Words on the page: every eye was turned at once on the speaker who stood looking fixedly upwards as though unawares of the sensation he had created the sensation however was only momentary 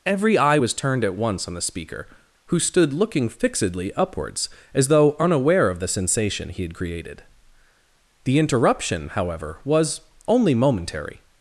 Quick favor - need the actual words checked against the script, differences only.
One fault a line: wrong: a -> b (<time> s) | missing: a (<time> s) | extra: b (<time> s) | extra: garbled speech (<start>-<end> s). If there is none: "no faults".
wrong: unawares -> unaware (5.2 s)
wrong: sensation -> interruption (8.4 s)